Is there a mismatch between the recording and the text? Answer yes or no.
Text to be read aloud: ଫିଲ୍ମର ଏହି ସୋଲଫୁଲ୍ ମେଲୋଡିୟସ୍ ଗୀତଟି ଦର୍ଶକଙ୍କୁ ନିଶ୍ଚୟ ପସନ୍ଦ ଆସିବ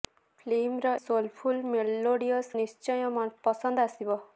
yes